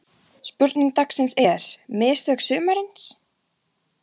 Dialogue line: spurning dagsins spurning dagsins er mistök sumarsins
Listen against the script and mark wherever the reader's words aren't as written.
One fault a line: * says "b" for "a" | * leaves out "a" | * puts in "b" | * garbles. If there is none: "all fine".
* leaves out "spurning dagsins"